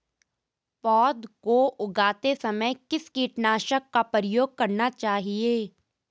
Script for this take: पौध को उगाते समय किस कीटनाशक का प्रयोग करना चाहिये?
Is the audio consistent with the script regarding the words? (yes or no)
yes